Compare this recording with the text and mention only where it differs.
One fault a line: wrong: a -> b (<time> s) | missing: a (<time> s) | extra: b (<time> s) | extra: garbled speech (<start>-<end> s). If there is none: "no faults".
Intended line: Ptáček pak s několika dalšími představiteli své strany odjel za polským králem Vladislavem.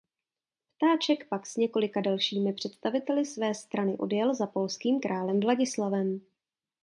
no faults